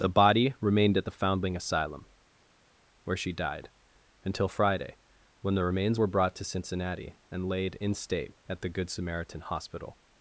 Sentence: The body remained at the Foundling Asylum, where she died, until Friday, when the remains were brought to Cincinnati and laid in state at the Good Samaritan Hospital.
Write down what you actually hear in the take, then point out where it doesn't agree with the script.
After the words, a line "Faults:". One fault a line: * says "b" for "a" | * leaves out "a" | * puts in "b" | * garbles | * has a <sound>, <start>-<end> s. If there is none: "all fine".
The body remained at the Foundling Asylum, where she died, until Friday, when the remains were brought to Cincinnati and laid in state at the Good Samaritan Hospital.
Faults:
all fine